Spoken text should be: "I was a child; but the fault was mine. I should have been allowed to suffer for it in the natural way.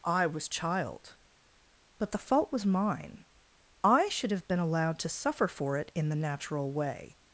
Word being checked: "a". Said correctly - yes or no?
no